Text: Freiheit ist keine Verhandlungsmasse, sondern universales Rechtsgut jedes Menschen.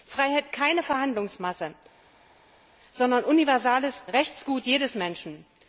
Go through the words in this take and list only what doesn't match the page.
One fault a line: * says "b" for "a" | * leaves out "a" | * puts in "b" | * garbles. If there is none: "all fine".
* leaves out "ist"